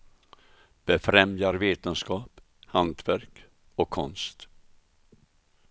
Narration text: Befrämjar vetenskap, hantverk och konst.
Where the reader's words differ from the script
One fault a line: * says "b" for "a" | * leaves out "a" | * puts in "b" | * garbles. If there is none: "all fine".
all fine